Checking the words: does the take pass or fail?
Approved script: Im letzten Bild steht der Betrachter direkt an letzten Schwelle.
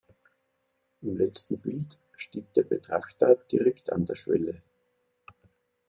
fail